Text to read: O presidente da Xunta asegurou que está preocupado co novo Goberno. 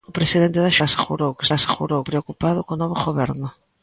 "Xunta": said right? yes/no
no